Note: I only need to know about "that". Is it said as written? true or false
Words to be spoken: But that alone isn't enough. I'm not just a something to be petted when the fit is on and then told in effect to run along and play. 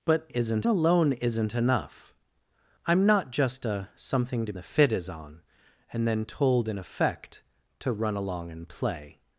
false